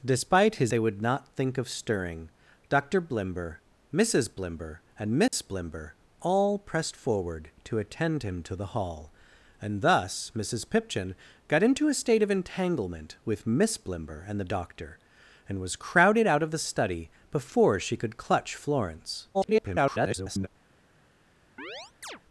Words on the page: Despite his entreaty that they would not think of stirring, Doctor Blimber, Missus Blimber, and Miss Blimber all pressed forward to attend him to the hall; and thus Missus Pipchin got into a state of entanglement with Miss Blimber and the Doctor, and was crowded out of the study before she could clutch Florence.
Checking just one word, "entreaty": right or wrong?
wrong